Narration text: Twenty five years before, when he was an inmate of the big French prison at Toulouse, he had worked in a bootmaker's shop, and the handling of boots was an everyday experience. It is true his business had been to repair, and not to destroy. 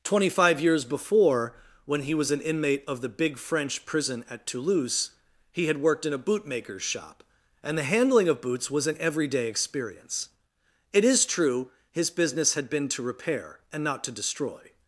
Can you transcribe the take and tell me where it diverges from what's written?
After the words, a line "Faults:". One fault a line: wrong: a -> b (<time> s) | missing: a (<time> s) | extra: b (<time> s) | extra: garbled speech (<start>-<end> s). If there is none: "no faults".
Twenty five years before, when he was an inmate of the big French prison at Toulouse, he had worked in a bootmaker's shop, and the handling of boots was an everyday experience. It is true his business had been to repair, and not to destroy.
Faults:
no faults